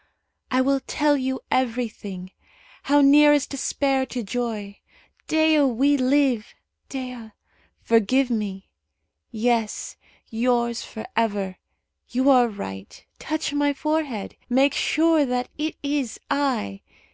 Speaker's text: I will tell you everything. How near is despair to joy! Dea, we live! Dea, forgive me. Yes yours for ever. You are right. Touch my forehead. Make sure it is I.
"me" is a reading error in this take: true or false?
false